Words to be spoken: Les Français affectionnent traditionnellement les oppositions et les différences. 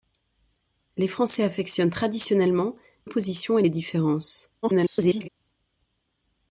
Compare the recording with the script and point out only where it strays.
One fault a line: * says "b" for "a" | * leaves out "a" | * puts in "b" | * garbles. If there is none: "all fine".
* leaves out "les"
* garbles